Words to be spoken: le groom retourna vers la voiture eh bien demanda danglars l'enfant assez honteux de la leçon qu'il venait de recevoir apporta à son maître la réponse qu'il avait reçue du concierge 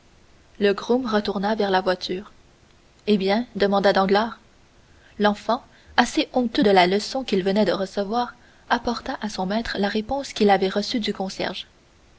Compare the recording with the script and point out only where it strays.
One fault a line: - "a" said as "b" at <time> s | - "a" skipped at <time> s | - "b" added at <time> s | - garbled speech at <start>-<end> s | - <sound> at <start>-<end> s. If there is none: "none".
none